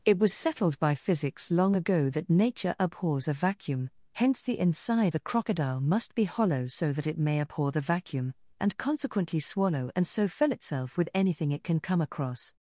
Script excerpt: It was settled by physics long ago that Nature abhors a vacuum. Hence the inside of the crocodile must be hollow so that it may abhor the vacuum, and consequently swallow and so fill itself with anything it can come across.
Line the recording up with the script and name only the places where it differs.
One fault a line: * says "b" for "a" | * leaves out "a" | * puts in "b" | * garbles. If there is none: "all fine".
* leaves out "of"